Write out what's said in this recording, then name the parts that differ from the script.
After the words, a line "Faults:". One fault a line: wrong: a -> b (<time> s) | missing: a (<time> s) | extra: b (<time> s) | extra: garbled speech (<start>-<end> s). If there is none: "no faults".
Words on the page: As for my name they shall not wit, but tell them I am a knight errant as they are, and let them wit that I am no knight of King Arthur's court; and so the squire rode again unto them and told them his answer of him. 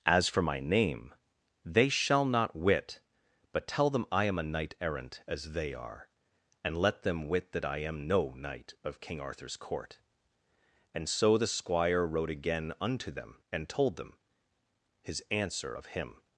As for my name they shall not wit, but tell them I am a knight errant as they are, and let them wit that I am no knight of King Arthur's court; and so the squire rode again unto them and told them his answer of him.
Faults:
no faults